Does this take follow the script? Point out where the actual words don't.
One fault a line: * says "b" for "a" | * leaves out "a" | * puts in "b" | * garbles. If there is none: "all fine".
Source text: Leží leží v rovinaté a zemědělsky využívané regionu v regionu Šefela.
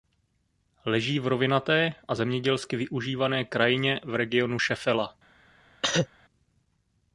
* leaves out "leží"
* says "krajině" for "regionu"